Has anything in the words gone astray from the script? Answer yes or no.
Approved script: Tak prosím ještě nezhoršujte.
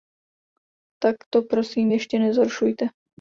yes